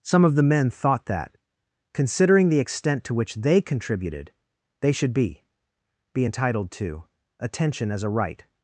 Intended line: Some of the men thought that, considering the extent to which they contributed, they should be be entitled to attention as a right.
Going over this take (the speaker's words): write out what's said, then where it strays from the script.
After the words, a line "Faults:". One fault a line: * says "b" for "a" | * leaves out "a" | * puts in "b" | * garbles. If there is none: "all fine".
Some of the men thought that, considering the extent to which they contributed, they should be be entitled to attention as a right.
Faults:
all fine